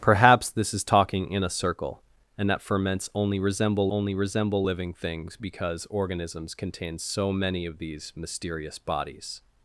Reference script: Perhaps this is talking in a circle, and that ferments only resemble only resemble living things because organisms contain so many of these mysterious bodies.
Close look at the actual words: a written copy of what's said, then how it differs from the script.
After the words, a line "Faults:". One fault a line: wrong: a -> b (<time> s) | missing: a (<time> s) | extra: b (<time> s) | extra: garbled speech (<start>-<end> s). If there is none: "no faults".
Perhaps this is talking in a circle, and that ferments only resemble only resemble living things because organisms contain so many of these mysterious bodies.
Faults:
no faults